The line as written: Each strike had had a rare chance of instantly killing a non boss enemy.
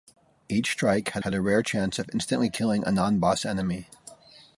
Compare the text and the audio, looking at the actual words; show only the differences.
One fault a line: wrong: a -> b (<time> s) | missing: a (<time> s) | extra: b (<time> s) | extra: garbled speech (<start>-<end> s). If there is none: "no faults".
no faults